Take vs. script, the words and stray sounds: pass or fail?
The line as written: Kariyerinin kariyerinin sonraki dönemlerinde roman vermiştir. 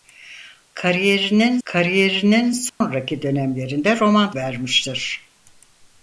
fail